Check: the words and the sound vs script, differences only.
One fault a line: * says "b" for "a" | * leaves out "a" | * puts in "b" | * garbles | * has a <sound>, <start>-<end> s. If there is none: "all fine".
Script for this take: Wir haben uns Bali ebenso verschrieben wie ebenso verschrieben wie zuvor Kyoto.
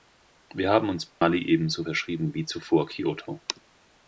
* has a dropout, 1.1-1.2 s
* leaves out "ebenso verschrieben wie"